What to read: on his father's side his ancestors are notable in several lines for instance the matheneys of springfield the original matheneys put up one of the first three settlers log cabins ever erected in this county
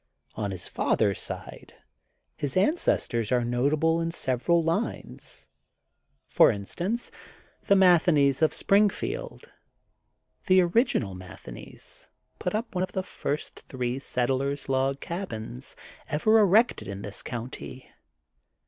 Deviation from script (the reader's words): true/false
false